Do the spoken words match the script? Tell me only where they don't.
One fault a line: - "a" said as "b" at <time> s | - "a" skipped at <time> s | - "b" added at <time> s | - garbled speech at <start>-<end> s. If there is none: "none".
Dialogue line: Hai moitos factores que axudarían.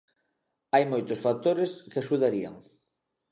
none